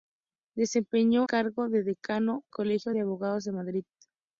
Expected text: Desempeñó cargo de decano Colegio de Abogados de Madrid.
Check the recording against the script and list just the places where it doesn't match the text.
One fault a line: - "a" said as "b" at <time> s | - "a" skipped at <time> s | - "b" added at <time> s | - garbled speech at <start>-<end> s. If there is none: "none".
none